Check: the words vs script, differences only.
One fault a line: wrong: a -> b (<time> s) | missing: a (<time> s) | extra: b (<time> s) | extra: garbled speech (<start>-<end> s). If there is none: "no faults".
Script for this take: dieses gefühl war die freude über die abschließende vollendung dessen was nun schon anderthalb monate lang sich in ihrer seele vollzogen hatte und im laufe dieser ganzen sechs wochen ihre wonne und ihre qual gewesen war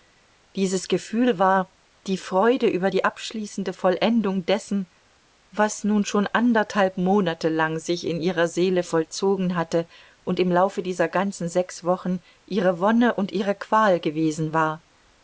no faults